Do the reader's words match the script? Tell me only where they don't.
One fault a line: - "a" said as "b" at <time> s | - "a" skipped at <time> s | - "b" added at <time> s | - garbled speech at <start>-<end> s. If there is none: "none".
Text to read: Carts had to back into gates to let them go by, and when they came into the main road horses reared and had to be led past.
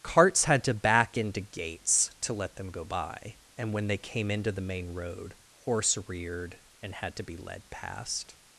- "horses" said as "horse" at 5.6 s